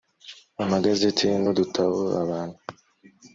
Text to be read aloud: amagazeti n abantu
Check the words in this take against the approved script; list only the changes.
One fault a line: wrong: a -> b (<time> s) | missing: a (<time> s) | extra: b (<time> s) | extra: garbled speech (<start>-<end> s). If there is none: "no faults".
extra: udutabo (1.5 s)